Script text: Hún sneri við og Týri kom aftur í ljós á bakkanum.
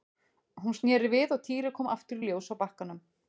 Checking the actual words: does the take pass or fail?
pass